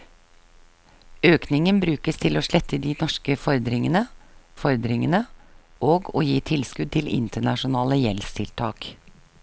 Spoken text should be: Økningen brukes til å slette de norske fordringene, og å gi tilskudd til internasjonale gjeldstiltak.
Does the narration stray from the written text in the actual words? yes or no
yes